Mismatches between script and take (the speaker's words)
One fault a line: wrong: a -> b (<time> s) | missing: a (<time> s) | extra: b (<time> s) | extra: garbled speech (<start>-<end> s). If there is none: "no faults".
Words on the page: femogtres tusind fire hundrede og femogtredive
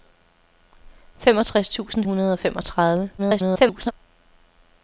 missing: fire (2.0 s)
extra: garbled speech (3.2-3.9 s)